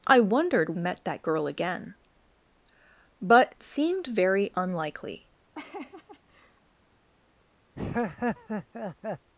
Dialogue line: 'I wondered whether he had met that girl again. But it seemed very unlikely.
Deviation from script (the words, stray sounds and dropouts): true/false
true